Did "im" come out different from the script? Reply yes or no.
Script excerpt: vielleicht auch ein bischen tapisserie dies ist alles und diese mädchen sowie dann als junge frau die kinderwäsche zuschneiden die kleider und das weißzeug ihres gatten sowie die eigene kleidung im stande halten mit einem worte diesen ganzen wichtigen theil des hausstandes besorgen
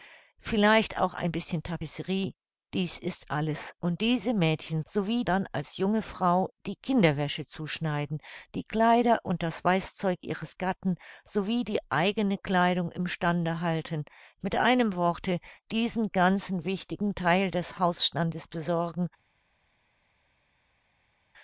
no